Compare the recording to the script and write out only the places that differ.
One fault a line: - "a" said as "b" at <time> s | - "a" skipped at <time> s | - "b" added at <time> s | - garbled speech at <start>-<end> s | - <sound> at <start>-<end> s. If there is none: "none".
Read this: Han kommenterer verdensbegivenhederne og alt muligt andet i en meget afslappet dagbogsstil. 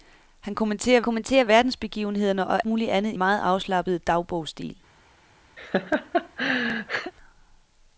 - "kommenterer" added at 1.0 s
- "alt" skipped at 2.6 s
- "en" skipped at 3.2 s
- laugh at 5.6-7.1 s